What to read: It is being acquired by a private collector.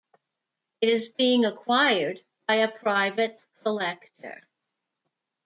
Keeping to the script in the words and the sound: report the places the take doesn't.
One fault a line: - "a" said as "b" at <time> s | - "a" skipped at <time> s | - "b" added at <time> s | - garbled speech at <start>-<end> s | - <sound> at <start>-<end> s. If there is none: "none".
none